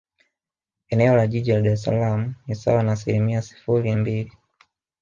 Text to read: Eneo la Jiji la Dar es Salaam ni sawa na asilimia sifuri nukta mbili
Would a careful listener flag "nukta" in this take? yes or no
yes